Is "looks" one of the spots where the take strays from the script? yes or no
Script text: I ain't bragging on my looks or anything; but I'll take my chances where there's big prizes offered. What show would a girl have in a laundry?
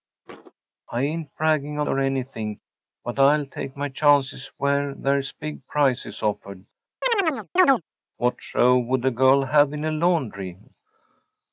yes